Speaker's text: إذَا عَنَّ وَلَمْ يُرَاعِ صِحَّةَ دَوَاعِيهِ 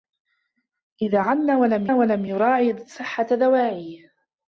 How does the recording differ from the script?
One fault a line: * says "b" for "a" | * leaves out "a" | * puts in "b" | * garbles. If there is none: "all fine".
* puts in "وَلَمْ"